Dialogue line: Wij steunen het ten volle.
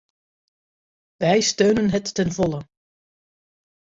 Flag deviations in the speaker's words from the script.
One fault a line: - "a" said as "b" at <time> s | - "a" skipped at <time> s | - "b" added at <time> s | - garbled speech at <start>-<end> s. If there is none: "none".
none